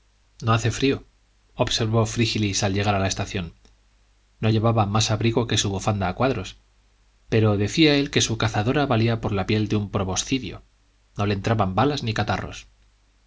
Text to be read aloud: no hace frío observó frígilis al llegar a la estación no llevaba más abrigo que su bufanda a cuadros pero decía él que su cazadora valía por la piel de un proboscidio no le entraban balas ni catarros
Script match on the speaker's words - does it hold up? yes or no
yes